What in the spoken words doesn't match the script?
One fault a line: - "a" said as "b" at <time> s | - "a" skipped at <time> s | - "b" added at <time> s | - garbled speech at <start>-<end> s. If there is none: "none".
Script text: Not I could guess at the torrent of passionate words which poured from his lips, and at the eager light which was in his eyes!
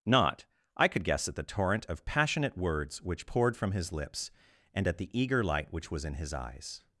none